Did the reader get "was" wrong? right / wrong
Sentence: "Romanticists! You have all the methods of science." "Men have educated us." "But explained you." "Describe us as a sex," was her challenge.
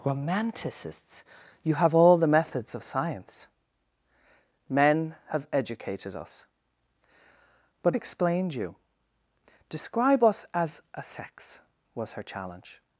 right